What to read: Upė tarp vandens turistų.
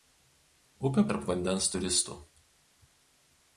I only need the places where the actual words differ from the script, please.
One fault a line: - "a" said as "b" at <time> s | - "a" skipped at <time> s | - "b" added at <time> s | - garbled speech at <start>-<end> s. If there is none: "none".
none